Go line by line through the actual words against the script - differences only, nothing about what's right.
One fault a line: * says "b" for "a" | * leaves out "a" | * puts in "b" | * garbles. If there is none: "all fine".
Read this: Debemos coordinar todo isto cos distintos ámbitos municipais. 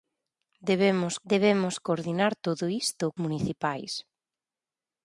* puts in "debemos"
* leaves out "cos distintos ámbitos"